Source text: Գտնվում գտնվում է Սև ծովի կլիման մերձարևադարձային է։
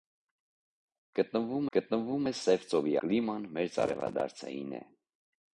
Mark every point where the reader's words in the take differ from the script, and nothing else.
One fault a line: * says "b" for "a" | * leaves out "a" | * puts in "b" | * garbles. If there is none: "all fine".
all fine